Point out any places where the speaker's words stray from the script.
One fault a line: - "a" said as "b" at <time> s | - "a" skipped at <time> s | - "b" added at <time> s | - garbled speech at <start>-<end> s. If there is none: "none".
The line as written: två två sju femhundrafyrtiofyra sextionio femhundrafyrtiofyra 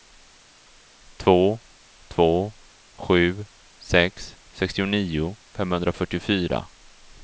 - "femhundrafyrtiofyra" said as "sex" at 3.8 s